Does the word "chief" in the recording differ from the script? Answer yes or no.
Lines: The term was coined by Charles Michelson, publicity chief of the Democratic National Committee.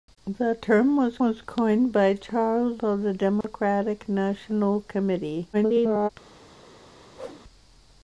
yes